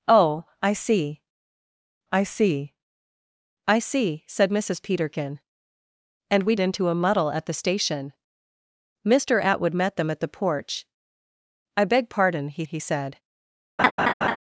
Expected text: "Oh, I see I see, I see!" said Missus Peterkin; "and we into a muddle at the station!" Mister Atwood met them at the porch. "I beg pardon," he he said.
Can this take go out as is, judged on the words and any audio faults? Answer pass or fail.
fail